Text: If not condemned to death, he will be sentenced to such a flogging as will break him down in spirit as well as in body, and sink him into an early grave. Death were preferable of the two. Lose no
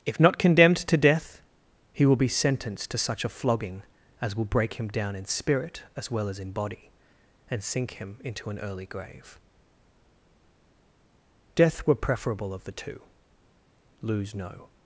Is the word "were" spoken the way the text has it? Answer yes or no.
yes